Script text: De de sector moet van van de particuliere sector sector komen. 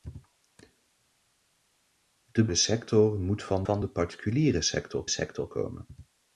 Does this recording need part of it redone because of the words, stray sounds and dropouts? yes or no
no